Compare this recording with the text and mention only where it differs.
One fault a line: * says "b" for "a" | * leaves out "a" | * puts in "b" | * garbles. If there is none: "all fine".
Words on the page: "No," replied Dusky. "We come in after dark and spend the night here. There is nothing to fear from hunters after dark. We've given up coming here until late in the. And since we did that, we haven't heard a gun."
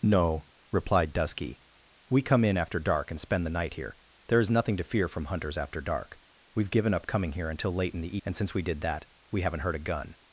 all fine